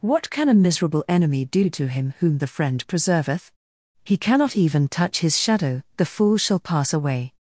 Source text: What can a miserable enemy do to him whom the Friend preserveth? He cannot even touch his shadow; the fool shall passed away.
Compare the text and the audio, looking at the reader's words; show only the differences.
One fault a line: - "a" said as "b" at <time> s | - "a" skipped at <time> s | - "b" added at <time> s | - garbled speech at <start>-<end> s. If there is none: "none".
- "passed" said as "pass" at 6.6 s